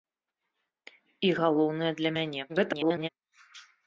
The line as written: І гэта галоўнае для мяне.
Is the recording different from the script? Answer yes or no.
yes